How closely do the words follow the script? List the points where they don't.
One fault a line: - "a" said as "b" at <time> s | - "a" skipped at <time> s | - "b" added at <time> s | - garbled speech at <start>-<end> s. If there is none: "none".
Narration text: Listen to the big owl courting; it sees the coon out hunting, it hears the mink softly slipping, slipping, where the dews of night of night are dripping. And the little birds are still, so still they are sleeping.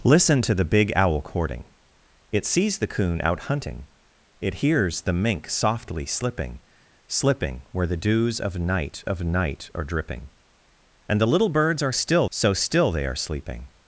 none